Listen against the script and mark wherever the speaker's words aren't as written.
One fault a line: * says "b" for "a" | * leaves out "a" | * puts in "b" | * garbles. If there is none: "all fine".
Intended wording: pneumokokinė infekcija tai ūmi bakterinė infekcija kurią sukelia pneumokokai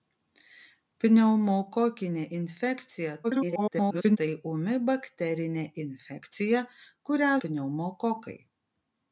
* garbles
* leaves out "sukelia"